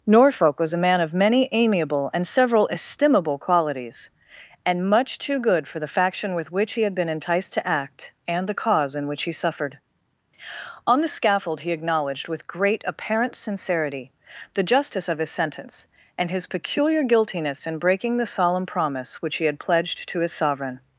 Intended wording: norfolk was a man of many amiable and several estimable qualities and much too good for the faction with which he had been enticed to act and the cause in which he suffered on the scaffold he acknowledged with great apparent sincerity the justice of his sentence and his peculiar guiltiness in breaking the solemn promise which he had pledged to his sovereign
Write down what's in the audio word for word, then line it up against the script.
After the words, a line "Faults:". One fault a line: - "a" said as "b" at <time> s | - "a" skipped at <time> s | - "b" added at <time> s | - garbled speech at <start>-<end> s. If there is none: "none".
norfolk was a man of many amiable and several estimable qualities and much too good for the faction with which he had been enticed to act and the cause in which he suffered on the scaffold he acknowledged with great apparent sincerity the justice of his sentence and his peculiar guiltiness in breaking the solemn promise which he had pledged to his sovereign
Faults:
none